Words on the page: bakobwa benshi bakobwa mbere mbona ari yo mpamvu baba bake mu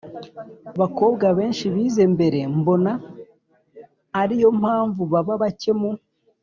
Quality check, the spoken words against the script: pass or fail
fail